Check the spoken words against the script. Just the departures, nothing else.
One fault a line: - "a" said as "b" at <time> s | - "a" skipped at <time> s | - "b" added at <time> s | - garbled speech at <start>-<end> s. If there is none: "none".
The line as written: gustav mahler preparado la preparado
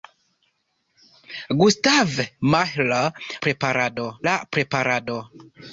none